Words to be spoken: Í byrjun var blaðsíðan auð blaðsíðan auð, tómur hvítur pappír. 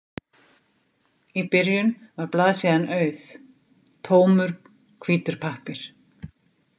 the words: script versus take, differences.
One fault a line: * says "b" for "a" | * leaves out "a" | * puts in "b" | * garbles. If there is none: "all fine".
* leaves out "blaðsíðan auð"